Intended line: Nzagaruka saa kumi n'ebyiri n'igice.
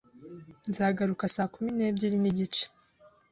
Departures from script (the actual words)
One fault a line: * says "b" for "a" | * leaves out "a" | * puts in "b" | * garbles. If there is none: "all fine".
all fine